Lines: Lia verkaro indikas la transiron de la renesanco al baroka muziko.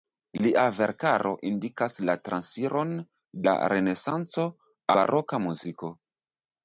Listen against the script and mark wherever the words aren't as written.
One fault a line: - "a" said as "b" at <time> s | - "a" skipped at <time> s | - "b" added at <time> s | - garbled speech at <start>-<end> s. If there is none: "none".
- "de" skipped at 3.0 s
- "al" skipped at 4.5 s